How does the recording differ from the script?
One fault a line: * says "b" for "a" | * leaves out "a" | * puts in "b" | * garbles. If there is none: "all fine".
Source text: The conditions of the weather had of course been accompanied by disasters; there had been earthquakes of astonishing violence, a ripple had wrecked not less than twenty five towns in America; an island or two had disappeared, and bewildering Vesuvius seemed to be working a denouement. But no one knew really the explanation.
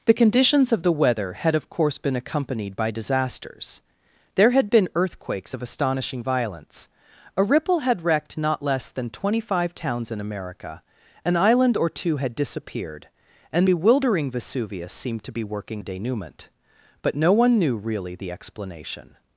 all fine